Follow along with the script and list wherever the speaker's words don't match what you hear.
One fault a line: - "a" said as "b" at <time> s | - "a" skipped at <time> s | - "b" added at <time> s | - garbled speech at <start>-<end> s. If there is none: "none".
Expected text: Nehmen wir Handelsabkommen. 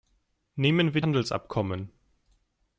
none